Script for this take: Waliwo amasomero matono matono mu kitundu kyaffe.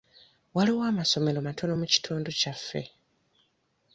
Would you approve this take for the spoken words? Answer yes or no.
no